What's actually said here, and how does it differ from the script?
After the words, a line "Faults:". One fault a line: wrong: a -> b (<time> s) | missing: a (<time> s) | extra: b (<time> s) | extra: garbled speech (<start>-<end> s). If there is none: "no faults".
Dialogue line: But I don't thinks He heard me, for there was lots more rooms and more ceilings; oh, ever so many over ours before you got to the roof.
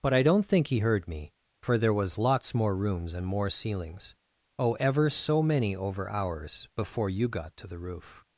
But I don't think He heard me, for there was lots more rooms and more ceilings; oh, ever so many over ours before you got to the roof.
Faults:
wrong: thinks -> think (0.5 s)